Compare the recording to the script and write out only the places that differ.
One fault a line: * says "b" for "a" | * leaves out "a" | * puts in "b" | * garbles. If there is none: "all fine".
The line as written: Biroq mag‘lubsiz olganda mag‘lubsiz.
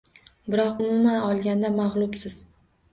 * says "umuman" for "mag‘lubsiz"